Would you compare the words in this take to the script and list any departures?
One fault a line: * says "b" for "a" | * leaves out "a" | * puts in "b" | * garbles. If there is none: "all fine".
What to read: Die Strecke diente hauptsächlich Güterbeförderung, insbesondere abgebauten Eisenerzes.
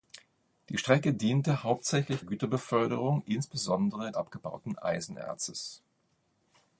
all fine